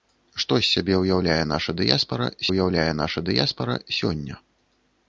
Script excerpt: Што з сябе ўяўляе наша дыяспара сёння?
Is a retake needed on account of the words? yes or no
yes